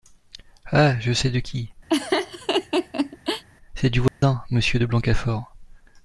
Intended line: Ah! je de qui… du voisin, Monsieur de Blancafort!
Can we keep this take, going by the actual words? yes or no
no